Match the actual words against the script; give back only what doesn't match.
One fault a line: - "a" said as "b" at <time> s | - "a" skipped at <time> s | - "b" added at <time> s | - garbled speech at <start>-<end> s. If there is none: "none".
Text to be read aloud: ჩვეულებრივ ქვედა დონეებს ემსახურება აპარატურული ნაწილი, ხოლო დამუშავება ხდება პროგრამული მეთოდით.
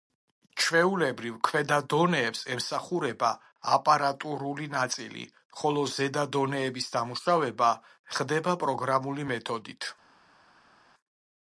- "ზედა დონეების" added at 6.0 s